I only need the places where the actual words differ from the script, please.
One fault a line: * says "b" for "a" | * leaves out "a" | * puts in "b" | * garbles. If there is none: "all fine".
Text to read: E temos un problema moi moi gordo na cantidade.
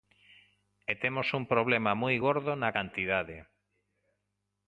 * leaves out "moi"